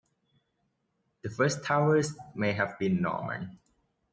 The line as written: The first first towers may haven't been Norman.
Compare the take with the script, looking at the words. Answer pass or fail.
fail